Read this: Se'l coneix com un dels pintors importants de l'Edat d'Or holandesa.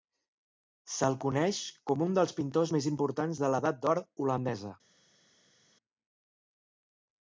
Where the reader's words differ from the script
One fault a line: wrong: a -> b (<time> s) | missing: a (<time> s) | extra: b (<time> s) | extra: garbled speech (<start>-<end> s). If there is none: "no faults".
extra: més (2.7 s)